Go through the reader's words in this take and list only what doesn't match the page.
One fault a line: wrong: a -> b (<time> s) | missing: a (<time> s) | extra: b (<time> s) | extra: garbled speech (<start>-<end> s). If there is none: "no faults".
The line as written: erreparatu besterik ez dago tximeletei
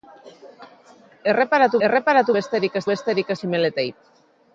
extra: erreparatu (1.9 s)
wrong: dago -> besterik (2.9 s)